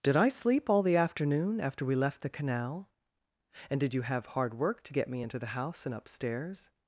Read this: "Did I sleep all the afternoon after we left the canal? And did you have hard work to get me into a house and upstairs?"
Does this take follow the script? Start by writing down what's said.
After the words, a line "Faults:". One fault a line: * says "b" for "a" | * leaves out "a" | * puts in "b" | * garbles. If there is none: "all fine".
"Did I sleep all the afternoon after we left the canal? And did you have hard work to get me into the house and upstairs?"
Faults:
* says "the" for "a"